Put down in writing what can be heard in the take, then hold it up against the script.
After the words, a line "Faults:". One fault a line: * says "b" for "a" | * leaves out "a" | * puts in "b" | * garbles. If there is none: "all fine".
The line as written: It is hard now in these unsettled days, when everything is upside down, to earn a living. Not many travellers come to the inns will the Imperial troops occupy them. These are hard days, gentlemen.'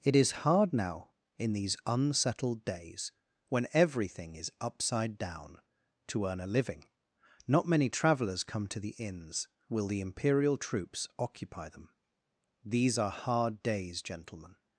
It is hard now in these unsettled days, when everything is upside down, to earn a living. Not many travellers come to the inns will the Imperial troops occupy them. These are hard days, gentlemen.'
Faults:
all fine